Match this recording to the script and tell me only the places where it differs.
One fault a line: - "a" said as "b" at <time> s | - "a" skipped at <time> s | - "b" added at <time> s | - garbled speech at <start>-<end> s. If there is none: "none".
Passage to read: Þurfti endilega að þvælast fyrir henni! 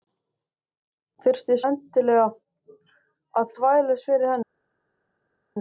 none